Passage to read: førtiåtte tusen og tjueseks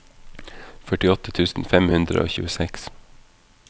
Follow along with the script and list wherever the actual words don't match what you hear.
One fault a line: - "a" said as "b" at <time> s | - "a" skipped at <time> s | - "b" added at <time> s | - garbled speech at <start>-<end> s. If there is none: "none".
- "fem hundre" added at 1.7 s